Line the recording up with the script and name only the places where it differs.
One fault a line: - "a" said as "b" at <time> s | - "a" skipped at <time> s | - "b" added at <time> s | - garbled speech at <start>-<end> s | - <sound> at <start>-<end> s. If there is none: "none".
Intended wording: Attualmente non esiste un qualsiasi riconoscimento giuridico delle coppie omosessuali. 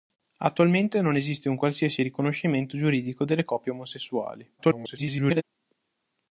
- garbled speech at 4.6-5.4 s